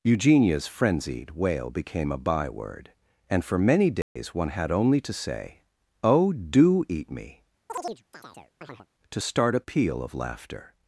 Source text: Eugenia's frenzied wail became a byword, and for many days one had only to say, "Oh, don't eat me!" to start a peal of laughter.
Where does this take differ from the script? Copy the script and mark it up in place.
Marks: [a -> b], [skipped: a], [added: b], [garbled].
Eugenia's frenzied wail became a byword, and for many days one had only to say, "Oh, [don't -> do] eat me!" to start a peal of laughter.